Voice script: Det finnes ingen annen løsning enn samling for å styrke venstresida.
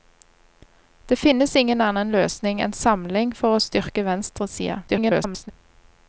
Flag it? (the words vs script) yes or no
yes